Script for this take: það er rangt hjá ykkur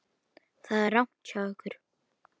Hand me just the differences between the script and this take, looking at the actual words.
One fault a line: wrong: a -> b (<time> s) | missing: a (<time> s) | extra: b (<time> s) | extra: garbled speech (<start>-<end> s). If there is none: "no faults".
no faults